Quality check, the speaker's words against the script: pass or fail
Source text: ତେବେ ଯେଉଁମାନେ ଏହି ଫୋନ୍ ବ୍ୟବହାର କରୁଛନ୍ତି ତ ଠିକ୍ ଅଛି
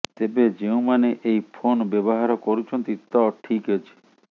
pass